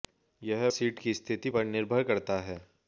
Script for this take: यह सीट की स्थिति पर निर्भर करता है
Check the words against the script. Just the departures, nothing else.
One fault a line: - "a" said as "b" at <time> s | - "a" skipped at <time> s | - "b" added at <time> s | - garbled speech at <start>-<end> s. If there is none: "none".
none